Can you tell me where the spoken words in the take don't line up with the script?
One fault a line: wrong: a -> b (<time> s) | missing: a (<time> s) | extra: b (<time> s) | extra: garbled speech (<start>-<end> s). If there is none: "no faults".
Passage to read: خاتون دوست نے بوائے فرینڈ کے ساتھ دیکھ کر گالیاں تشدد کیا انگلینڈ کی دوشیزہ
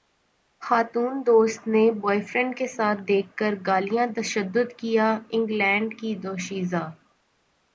no faults